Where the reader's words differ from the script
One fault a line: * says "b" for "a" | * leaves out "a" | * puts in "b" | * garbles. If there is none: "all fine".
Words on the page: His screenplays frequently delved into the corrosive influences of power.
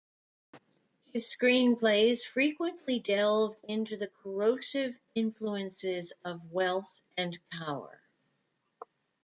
* puts in "wealth and"